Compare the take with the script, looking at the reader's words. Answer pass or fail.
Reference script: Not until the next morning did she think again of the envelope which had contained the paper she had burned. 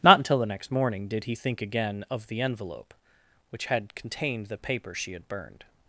fail